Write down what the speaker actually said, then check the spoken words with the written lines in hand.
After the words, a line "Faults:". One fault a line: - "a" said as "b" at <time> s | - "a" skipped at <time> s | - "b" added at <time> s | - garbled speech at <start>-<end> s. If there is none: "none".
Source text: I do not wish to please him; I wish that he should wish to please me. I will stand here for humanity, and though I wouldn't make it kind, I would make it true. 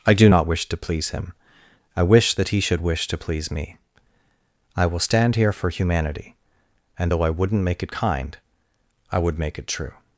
I do not wish to please him; I wish that he should wish to please me. I will stand here for humanity, and though I wouldn't make it kind, I would make it true.
Faults:
none